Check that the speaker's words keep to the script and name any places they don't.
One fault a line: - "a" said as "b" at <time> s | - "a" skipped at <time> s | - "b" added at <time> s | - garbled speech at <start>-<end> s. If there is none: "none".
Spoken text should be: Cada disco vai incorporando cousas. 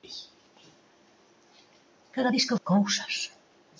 - "vai incorporando" skipped at 2.6 s